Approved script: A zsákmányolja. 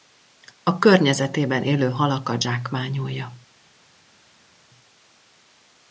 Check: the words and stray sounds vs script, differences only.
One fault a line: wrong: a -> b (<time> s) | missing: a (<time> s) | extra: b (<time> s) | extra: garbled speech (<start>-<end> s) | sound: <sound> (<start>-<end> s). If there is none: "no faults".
extra: környezetében élő halakat (0.8 s)